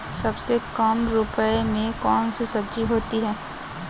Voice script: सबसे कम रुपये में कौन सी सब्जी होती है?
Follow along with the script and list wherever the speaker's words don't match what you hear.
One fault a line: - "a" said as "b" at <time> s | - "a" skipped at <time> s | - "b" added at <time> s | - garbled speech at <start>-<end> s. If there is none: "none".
none